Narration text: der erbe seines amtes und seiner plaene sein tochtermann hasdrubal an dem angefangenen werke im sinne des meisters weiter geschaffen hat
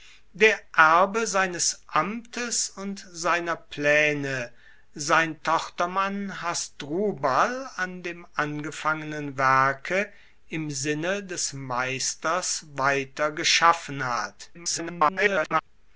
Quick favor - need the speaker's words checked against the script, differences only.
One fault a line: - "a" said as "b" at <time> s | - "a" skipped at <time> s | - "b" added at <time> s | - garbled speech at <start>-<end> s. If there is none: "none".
- garbled speech at 14.5-15.6 s